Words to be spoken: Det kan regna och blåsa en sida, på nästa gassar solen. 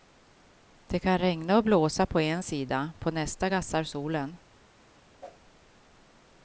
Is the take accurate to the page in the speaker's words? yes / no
no